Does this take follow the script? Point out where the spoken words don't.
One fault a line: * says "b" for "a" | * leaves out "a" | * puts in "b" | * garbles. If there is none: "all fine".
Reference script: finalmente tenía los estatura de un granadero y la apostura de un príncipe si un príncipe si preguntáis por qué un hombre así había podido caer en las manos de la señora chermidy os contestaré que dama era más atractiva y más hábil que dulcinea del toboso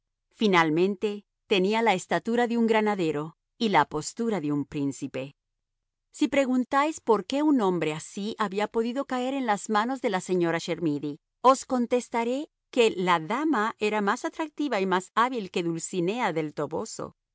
* says "la" for "los"
* leaves out "un príncipe si"
* puts in "la"